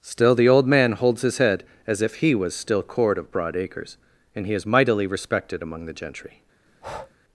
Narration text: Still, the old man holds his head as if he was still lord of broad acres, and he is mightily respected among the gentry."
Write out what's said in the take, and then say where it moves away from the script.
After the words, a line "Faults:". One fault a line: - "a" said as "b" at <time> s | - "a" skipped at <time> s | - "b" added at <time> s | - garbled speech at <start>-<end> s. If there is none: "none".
Still, the old man holds his head as if he was still cord of broad acres, and he is mightily respected among the gentry."
Faults:
- "lord" said as "cord" at 2.8 s